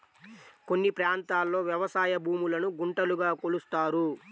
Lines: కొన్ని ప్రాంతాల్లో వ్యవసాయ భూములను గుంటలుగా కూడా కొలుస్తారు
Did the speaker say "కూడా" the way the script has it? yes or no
no